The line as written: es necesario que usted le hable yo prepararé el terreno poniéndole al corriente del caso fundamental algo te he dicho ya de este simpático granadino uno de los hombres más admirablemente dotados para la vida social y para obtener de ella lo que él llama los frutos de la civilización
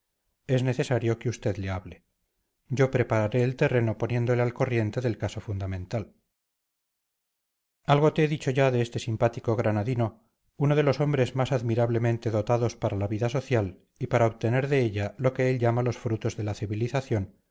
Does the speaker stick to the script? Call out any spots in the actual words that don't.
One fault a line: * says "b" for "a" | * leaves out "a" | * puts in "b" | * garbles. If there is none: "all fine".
all fine